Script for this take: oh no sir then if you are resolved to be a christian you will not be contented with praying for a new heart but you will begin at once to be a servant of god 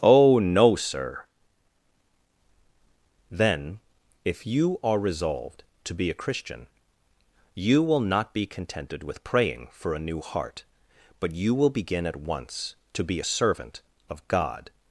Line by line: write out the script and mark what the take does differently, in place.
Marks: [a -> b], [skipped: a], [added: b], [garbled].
oh no sir then if you are resolved to be a christian you will not be contented with praying for a new heart but you will begin at once to be a servant of god